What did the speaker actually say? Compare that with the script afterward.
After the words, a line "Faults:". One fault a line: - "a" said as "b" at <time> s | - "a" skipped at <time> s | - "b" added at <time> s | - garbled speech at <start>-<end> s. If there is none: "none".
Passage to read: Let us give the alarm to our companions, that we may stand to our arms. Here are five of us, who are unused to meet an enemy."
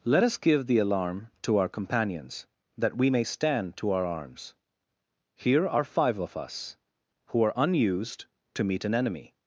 Let us give the alarm to our companions, that we may stand to our arms. Here are five of us, who are unused to meet an enemy."
Faults:
none